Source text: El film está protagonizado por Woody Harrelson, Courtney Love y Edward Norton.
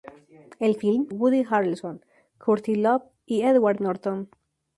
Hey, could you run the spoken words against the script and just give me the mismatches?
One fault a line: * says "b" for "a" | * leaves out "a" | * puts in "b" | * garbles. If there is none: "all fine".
* leaves out "está protagonizado por"